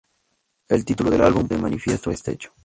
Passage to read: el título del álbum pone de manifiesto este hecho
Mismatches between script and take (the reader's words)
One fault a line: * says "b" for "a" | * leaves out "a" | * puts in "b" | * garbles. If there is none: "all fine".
* leaves out "pone"